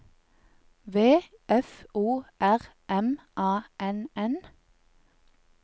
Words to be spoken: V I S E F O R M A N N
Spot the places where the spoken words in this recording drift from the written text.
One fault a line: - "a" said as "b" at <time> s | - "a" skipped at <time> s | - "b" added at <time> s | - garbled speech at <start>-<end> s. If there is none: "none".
- "I S E" skipped at 1.2 s